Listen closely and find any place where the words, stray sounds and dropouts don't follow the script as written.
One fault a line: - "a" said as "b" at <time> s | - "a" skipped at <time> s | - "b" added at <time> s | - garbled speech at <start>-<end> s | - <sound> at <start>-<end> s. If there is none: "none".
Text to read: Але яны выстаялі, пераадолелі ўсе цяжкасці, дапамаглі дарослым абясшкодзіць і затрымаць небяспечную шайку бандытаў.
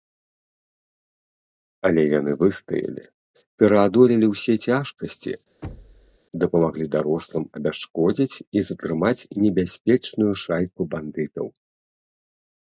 - thud at 5.6-6.2 s